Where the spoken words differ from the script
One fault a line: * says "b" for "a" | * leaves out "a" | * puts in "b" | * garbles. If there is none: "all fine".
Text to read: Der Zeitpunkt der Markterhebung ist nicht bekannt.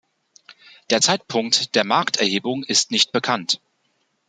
all fine